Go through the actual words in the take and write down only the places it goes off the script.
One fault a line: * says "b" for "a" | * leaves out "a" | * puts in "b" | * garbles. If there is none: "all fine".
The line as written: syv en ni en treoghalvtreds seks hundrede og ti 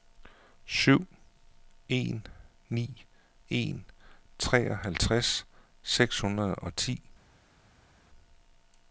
all fine